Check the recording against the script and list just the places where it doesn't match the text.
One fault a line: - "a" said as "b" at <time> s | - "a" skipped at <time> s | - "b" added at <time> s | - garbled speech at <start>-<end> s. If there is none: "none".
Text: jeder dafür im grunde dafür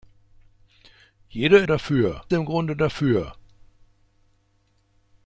none